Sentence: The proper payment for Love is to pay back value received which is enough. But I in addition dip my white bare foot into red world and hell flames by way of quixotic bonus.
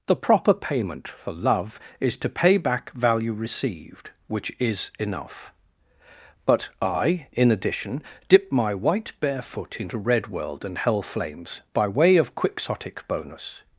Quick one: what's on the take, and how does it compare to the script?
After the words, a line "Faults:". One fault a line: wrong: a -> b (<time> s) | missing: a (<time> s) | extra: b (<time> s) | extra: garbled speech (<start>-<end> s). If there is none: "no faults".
The proper payment for Love is to pay back value received which is enough. But I in addition dip my white bare foot into red world and hell flames by way of quixotic bonus.
Faults:
no faults